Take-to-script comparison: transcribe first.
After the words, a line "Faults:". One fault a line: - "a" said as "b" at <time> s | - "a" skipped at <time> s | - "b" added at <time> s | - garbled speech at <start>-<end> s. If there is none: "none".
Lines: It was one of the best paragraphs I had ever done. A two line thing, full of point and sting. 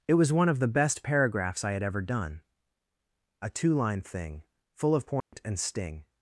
It was one of the best paragraphs I had ever done. A two line thing, full of point and sting.
Faults:
none